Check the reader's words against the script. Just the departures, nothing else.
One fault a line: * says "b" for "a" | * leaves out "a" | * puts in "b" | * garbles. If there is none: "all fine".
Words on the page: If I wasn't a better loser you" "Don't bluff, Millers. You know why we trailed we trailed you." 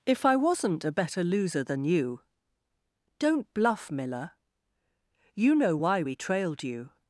* puts in "than"
* says "Miller" for "Millers"
* leaves out "we trailed"